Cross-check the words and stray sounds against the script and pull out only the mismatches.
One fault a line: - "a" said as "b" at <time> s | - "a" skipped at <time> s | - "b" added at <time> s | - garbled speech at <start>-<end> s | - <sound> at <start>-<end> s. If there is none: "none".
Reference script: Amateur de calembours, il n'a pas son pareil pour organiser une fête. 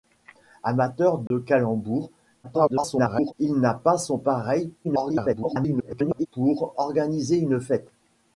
- dropout at 1.3-1.3 s
- garbled speech at 2.4-3.3 s
- garbled speech at 4.8-6.3 s